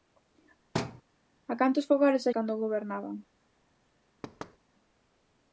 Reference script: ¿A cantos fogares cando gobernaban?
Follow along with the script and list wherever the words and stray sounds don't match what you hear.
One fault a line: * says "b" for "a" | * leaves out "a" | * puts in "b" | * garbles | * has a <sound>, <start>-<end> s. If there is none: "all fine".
* has a thud, 0.7-1.0 s
* has a thud, 4.2-4.6 s